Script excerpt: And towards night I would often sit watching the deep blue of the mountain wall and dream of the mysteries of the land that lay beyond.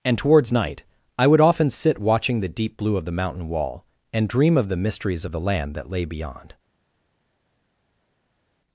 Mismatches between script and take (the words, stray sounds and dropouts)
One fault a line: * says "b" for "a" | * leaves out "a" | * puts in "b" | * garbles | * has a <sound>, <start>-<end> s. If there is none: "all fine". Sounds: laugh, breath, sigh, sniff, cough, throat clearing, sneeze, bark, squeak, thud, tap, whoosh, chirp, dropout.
all fine